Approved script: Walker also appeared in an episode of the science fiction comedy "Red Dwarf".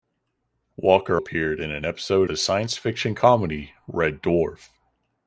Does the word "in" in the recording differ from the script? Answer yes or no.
no